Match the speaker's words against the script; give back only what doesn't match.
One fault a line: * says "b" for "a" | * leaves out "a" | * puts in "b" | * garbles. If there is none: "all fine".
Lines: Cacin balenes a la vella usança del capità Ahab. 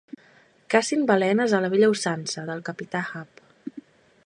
all fine